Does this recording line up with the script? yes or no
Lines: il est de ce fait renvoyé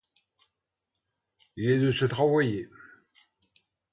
no